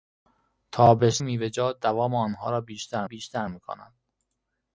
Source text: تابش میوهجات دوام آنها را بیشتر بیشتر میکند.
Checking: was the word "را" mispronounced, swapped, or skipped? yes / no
no